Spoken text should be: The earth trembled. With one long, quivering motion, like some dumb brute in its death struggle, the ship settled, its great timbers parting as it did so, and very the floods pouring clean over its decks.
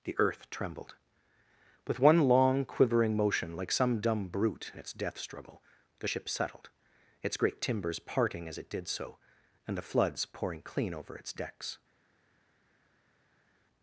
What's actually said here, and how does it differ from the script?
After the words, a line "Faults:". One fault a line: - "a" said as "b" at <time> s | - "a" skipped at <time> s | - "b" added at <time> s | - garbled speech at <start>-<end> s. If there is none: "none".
The earth trembled. With one long, quivering motion, like some dumb brute in its death struggle, the ship settled, its great timbers parting as it did so, and the floods pouring clean over its decks.
Faults:
- "very" skipped at 9.8 s